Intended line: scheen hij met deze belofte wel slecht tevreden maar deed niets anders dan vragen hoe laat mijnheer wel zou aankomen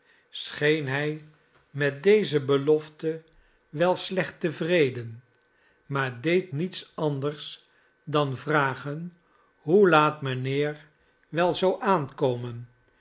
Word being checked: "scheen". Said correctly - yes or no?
yes